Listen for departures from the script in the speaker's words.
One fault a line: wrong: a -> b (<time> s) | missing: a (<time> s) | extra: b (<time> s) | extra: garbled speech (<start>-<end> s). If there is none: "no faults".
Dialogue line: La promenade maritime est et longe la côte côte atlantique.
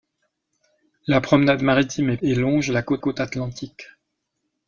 no faults